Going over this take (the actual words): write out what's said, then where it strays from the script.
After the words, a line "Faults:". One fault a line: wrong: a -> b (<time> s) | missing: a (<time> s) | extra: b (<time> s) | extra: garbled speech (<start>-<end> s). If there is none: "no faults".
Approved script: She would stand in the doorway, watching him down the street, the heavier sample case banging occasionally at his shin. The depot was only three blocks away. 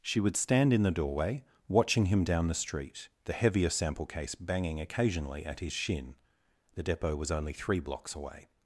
She would stand in the doorway, watching him down the street, the heavier sample case banging occasionally at his shin. The depot was only three blocks away.
Faults:
no faults